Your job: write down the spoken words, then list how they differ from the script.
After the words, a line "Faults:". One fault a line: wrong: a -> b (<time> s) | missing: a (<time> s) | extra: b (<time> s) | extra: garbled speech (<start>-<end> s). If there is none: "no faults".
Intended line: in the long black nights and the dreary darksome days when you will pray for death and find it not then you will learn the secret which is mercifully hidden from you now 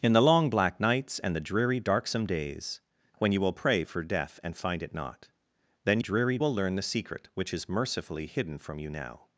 in the long black nights and the dreary darksome days when you will pray for death and find it not then dreary will learn the secret which is mercifully hidden from you now
Faults:
wrong: you -> dreary (6.0 s)